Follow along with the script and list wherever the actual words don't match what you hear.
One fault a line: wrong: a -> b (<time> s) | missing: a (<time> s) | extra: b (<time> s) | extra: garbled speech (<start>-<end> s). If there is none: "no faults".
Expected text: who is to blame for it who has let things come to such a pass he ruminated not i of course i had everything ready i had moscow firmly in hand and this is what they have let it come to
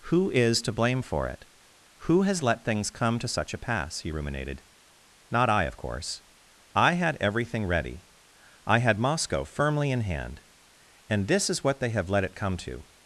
no faults